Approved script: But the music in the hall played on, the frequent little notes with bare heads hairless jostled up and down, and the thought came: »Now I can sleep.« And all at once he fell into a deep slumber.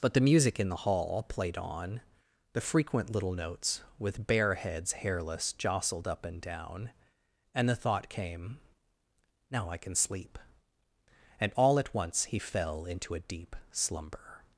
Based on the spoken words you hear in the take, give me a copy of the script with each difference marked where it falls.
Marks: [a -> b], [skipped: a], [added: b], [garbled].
But the music in the hall played on, the frequent little notes with bare heads hairless jostled up and down, and the thought came: »Now I can sleep.« And all at once he fell into a deep slumber.